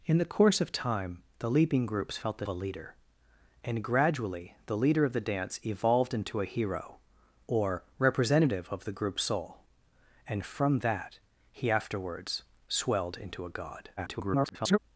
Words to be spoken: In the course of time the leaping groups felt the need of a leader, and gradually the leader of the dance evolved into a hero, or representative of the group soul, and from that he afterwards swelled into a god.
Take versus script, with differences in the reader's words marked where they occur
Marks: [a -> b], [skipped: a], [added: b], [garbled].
In the course of time the leaping groups felt the [skipped: need of] a leader, and gradually the leader of the dance evolved into a hero, or representative of the group soul, and from that he afterwards swelled into a god. [garbled]